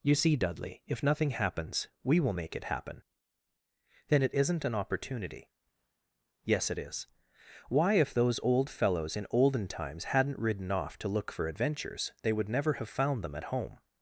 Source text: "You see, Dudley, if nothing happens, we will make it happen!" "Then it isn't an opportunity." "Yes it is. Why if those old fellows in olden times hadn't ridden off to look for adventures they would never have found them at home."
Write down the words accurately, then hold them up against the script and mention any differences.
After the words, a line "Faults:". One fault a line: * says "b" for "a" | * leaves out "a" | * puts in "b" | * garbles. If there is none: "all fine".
"You see, Dudley, if nothing happens, we will make it happen!" "Then it isn't an opportunity." "Yes it is. Why if those old fellows in olden times hadn't ridden off to look for adventures they would never have found them at home."
Faults:
all fine